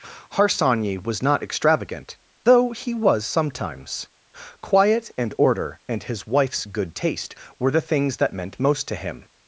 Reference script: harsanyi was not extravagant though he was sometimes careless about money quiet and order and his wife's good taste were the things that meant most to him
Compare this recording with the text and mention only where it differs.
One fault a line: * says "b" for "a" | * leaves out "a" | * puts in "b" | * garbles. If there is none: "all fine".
* leaves out "careless about money"